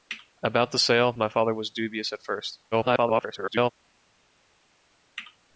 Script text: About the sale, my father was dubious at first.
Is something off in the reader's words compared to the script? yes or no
yes